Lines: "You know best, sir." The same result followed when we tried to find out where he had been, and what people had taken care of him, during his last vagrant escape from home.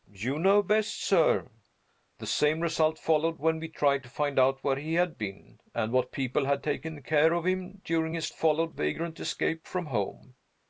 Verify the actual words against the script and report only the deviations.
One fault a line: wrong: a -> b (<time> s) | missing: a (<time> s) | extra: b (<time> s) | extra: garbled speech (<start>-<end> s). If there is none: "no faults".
wrong: last -> followed (8.3 s)